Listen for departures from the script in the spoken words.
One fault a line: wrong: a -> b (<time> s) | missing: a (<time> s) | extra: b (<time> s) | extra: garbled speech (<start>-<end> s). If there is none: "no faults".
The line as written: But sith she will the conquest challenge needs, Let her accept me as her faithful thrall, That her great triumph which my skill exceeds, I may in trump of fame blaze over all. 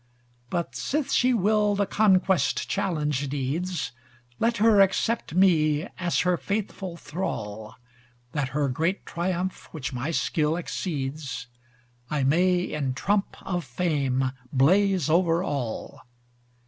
no faults